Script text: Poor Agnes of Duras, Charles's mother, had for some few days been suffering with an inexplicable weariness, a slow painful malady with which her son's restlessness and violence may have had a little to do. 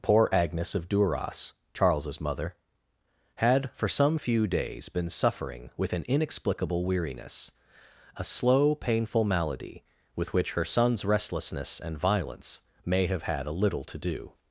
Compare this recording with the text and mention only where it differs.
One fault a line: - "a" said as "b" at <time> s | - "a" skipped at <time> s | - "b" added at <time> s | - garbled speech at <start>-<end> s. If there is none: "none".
none